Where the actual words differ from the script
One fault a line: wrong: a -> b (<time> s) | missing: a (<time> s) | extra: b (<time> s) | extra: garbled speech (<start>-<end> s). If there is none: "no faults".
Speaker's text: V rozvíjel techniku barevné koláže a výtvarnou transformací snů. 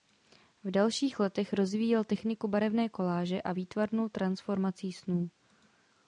extra: dalších letech (0.7 s)